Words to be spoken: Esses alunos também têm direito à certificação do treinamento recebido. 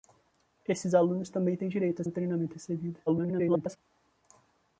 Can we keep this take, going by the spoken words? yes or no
no